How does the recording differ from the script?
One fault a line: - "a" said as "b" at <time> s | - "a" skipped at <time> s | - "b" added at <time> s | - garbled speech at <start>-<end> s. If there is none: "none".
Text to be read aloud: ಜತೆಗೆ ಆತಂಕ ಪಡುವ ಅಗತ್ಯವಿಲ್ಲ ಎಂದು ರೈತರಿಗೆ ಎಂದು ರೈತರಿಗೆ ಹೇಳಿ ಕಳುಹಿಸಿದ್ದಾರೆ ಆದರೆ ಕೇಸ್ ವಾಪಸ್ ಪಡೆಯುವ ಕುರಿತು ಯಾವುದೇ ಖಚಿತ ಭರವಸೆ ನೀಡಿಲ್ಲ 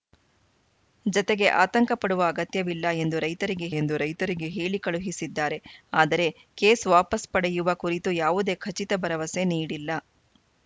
none